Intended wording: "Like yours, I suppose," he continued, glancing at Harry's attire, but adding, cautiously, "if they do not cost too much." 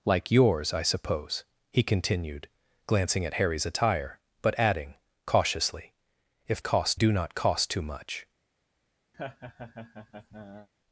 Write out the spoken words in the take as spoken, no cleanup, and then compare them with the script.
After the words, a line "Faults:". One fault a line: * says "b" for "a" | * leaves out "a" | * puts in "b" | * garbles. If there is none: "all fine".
"Like yours, I suppose," he continued, glancing at Harry's attire, but adding, cautiously, "if cost do not cost too much."
Faults:
* says "cost" for "they"